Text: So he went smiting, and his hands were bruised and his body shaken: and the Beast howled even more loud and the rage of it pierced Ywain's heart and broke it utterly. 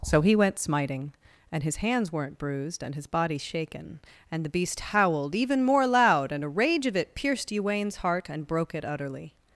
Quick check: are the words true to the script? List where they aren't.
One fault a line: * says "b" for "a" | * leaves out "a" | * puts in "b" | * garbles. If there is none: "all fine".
* says "weren't" for "were"
* says "a" for "the"